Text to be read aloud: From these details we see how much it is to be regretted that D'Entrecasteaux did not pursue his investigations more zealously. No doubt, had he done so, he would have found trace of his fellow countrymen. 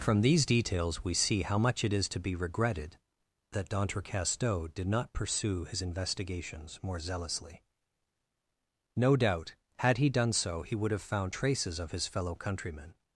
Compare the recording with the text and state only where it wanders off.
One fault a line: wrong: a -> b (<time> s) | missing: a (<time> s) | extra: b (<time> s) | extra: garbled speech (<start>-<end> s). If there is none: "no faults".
wrong: trace -> traces (11.3 s)